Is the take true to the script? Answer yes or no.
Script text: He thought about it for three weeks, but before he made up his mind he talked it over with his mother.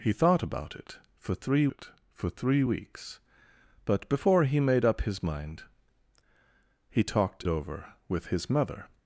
no